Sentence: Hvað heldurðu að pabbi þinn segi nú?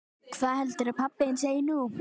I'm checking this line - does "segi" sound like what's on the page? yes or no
yes